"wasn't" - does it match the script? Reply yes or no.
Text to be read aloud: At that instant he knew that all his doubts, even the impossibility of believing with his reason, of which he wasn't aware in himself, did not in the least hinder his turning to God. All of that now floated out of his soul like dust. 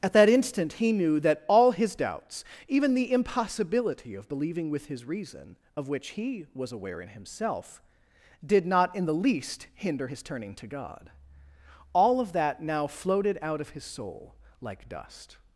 no